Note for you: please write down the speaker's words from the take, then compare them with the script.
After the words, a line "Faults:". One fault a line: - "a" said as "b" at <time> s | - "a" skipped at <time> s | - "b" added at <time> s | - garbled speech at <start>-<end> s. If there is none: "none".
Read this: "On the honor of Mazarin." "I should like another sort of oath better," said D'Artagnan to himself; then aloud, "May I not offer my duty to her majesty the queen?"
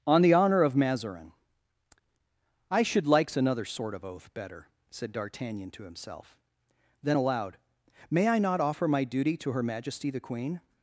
"On the honor of Mazarin." "I should likes another sort of oath better," said D'Artagnan to himself; then aloud, "May I not offer my duty to her majesty the queen?"
Faults:
- "like" said as "likes" at 3.0 s